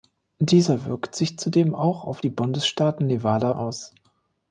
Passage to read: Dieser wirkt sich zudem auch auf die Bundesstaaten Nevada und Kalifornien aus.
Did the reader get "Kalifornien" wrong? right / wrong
wrong